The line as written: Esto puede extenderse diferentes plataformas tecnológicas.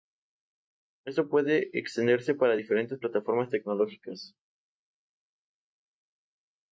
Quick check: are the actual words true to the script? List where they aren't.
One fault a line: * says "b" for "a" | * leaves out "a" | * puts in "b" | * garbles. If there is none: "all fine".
* puts in "para"